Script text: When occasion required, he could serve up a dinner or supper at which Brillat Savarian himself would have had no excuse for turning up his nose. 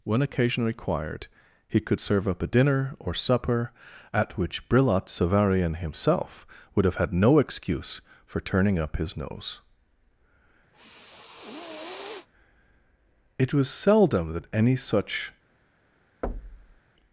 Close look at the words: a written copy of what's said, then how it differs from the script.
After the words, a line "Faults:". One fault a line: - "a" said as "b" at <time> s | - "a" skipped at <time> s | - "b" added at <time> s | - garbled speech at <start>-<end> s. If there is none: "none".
When occasion required, he could serve up a dinner or supper at which Brillat Savarian himself would have had no excuse for turning up his nose. It was seldom that any such
Faults:
- "It was seldom that any such" added at 13.4 s